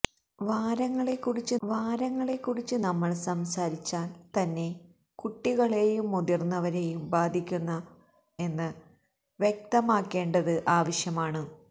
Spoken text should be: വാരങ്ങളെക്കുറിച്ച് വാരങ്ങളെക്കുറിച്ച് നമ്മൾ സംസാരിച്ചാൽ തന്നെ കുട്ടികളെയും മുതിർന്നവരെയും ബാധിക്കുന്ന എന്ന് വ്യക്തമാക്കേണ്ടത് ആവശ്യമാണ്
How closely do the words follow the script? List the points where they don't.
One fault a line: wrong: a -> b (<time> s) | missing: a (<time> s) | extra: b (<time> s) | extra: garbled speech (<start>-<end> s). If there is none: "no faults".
no faults